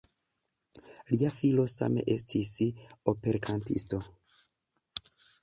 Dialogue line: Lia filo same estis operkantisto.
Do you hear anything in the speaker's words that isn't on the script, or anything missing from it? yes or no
no